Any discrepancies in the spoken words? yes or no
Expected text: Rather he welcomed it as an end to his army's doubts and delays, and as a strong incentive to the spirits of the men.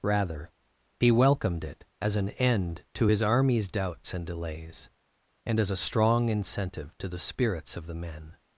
no